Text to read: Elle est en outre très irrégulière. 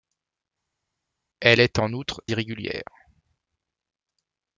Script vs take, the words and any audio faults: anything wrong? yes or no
yes